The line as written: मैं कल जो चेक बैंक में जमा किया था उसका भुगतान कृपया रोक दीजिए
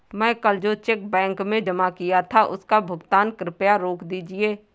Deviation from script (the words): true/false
false